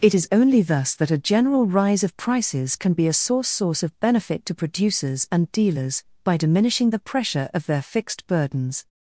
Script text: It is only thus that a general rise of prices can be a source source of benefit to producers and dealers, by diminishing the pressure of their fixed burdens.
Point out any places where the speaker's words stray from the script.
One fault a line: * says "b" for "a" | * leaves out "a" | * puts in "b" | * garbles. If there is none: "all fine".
all fine